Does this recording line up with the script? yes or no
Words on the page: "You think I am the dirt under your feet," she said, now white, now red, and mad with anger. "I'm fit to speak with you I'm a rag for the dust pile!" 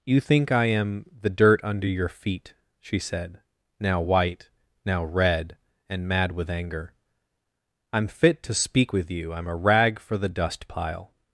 yes